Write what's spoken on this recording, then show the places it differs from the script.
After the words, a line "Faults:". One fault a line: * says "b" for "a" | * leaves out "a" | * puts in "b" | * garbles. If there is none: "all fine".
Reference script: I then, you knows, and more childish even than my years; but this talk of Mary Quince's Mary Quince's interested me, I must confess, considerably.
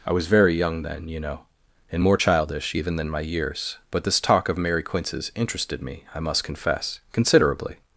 I was very young then, you know, and more childish even than my years; but this talk of Mary Quince's interested me, I must confess, considerably.
Faults:
* puts in "was very young"
* says "know" for "knows"
* leaves out "Mary Quince's"